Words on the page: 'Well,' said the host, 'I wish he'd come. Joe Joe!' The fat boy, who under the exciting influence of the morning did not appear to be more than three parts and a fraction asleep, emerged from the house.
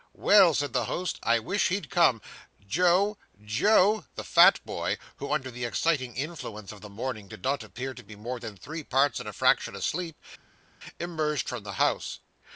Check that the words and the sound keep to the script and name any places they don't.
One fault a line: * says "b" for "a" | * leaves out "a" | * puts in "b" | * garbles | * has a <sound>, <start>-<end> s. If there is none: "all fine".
all fine